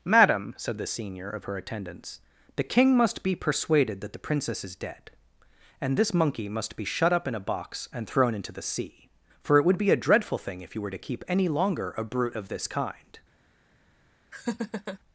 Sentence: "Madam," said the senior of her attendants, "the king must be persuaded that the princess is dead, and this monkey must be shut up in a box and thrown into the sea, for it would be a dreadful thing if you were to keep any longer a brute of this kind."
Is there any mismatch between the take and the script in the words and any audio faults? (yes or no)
yes